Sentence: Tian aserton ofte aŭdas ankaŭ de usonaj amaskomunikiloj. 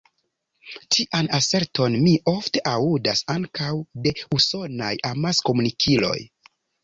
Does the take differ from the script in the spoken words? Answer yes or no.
yes